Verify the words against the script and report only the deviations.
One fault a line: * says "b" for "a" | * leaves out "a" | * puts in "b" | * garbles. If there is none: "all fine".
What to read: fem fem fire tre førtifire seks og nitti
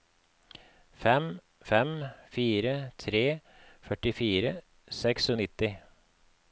all fine